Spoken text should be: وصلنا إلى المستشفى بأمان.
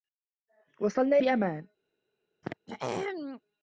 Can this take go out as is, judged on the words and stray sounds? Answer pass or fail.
fail